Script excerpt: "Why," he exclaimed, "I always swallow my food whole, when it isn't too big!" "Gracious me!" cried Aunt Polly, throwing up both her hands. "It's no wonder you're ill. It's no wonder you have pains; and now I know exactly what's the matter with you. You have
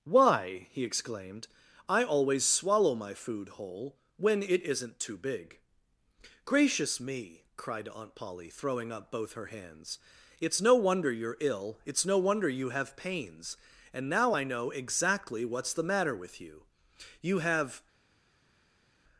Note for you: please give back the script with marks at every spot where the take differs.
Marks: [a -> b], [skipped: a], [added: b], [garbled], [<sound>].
"Why," he exclaimed, "I always swallow my food whole, when it isn't too big!" "Gracious me!" cried Aunt Polly, throwing up both her hands. "It's no wonder you're ill. It's no wonder you have pains; and now I know exactly what's the matter with you. You have